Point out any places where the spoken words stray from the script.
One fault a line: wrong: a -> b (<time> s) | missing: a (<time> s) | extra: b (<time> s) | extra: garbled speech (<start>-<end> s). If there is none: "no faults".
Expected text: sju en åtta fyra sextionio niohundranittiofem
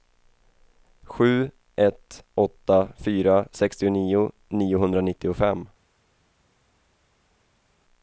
wrong: en -> ett (1.8 s)